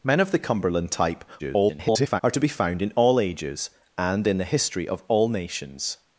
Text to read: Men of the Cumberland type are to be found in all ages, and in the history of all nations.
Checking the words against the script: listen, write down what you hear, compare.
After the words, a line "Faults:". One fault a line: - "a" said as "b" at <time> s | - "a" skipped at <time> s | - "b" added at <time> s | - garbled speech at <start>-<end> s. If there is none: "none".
Men of the Cumberland type [garbled] are to be found in all ages, and in the history of all nations.
Faults:
- garbled speech at 1.4-2.2 s